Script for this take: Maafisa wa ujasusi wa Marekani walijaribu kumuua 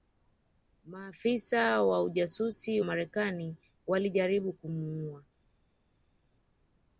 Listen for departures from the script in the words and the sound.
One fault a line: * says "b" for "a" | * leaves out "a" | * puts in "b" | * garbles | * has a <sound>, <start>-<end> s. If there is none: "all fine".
* leaves out "wa"